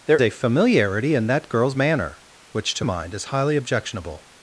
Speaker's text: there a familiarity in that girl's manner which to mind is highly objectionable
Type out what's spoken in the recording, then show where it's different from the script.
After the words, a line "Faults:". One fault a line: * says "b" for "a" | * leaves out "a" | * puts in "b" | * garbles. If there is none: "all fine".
there a familiarity in that girl's manner which to mind is highly objectionable
Faults:
all fine